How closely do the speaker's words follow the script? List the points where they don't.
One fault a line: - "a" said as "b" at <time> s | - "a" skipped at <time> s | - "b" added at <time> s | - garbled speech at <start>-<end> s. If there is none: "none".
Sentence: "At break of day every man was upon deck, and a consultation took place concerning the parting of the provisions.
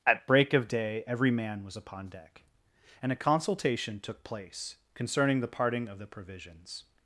none